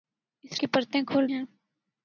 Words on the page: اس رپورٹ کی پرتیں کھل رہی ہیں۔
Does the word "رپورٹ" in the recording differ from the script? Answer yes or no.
yes